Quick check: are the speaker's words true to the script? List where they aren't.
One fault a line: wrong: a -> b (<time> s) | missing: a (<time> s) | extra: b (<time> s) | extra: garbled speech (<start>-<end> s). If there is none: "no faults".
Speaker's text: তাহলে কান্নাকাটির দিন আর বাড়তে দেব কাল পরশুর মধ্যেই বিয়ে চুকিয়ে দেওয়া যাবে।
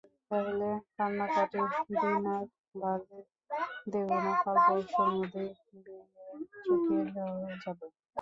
extra: না (4.2 s)